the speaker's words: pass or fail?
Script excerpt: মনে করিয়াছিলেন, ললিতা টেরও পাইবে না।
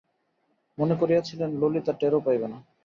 pass